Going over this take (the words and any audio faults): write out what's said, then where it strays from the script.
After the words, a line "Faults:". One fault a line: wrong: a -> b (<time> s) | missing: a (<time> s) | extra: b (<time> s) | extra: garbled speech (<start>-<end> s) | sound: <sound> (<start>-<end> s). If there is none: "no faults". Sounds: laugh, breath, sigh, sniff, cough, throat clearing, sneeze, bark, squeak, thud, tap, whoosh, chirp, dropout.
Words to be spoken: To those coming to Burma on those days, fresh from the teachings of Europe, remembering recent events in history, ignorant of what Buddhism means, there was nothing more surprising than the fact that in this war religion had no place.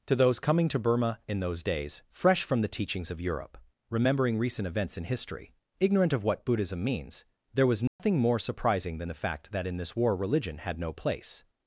To those coming to Burma in those days, fresh from the teachings of Europe, remembering recent events in history, ignorant of what Buddhism means, there was nothing more surprising than the fact that in this war religion had no place.
Faults:
wrong: on -> in (1.3 s)
sound: dropout (7.9-8.0 s)